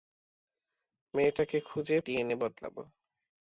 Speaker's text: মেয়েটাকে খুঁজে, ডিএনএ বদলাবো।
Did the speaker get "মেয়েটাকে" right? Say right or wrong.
right